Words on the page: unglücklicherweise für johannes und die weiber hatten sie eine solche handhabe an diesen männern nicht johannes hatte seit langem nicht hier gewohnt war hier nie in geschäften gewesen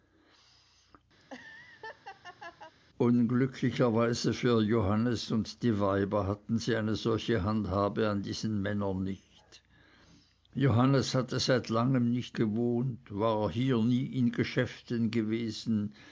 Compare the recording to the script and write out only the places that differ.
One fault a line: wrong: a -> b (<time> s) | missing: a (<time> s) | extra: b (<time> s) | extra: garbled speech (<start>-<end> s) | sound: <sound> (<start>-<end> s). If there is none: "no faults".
sound: laugh (1.2-2.7 s)
missing: hier (12.4 s)